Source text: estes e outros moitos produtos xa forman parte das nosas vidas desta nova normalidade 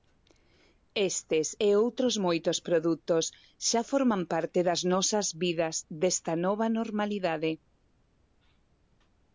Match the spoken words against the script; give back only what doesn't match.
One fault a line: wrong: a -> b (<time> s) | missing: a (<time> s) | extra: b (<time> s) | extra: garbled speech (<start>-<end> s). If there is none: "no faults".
no faults